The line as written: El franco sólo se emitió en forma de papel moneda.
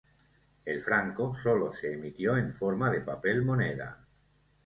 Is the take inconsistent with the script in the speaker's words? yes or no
no